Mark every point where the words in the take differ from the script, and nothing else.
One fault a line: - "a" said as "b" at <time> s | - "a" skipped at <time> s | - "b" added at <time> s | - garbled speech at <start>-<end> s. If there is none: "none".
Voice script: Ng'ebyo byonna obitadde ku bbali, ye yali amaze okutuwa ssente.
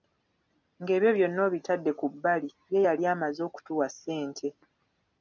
none